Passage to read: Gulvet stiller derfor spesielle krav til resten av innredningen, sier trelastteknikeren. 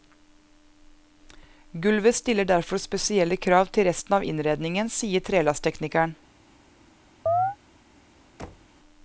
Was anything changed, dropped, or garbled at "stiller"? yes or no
no